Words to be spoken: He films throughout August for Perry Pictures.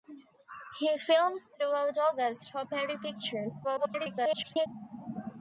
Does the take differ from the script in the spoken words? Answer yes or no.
yes